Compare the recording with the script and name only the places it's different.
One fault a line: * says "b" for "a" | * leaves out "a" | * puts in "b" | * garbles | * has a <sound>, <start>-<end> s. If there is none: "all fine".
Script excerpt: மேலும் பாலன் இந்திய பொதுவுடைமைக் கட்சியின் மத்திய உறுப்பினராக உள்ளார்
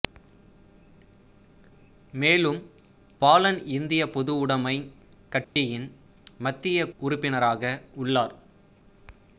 * has a dropout, 5.4-5.6 s